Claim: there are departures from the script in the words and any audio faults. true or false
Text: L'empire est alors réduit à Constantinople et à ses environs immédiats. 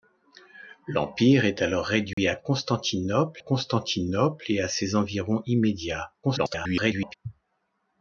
true